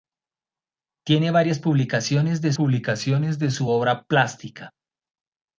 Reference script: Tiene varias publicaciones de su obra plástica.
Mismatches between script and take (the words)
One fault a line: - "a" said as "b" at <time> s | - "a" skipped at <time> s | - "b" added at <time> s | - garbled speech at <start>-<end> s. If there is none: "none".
- "publicaciones de" added at 2.5 s